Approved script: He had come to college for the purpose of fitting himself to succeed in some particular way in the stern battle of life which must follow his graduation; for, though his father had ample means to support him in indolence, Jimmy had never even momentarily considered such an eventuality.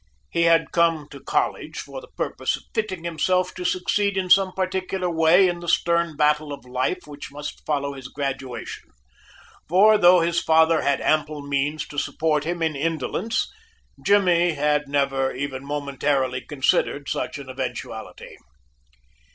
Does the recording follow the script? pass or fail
pass